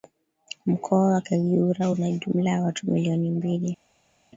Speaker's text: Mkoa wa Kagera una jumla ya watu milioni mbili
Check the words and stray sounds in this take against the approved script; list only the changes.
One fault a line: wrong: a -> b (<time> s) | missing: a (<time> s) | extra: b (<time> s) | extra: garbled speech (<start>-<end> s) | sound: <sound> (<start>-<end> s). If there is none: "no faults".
no faults